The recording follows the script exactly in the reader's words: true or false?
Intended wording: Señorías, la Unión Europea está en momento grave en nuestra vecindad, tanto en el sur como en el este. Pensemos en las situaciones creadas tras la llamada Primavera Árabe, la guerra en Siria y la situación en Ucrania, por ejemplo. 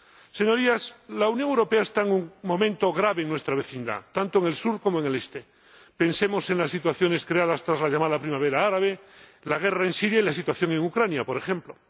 false